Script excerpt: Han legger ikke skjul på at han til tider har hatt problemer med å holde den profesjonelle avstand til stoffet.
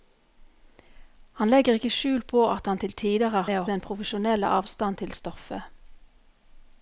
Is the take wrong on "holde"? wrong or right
wrong